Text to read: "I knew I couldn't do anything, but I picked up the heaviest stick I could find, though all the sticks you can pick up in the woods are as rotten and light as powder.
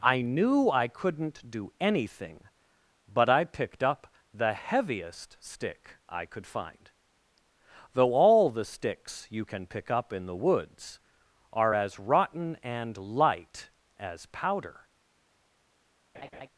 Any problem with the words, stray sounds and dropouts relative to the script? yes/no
yes